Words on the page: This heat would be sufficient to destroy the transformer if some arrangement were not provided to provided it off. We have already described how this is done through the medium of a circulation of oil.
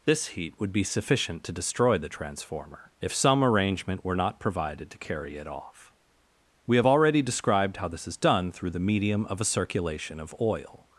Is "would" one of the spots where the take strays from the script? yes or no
no